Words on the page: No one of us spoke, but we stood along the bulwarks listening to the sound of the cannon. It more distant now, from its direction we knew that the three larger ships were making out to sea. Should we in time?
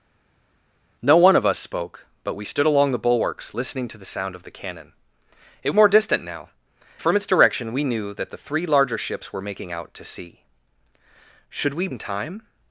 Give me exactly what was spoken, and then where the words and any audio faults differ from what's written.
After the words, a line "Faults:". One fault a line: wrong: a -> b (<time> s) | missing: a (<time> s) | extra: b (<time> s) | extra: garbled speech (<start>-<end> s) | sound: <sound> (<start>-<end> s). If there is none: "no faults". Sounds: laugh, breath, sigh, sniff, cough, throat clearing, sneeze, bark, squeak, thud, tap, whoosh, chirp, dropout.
No one of us spoke, but we stood along the bulwarks listening to the sound of the cannon. It more distant now, from its direction we knew that the three larger ships were making out to sea. Should we in time?
Faults:
no faults